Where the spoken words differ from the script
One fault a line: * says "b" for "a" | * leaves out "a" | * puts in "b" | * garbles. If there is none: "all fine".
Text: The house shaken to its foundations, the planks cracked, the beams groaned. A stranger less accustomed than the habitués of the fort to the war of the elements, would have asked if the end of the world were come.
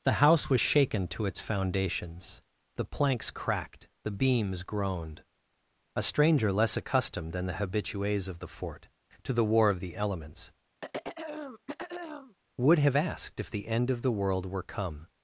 * puts in "was"